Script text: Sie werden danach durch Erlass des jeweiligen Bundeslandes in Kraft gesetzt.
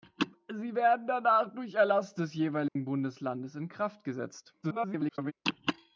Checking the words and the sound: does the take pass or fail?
fail